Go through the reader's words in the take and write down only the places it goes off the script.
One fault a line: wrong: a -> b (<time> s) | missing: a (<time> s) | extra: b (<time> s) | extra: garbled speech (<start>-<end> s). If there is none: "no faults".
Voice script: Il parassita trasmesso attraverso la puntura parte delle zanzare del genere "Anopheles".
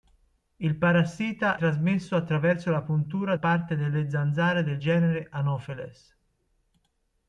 no faults